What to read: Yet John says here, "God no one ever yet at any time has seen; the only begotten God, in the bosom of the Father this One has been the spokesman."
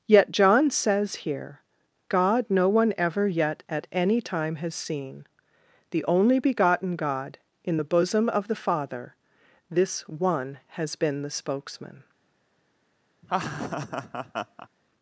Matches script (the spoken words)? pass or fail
pass